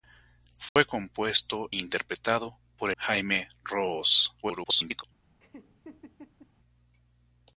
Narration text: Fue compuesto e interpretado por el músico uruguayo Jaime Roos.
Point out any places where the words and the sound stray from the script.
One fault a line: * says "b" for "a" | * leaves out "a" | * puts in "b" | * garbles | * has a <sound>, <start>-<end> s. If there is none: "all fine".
* has a dropout, 0.7-0.8 s
* leaves out "e"
* leaves out "el músico uruguayo"
* garbles
* has a laugh, 5.4-6.5 s